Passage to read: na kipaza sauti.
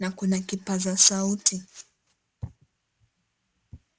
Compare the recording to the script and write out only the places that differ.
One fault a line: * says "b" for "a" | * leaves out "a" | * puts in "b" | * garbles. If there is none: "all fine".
* puts in "kuna"